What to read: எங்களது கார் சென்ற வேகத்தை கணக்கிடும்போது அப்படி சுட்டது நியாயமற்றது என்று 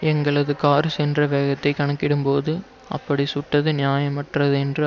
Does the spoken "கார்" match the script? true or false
true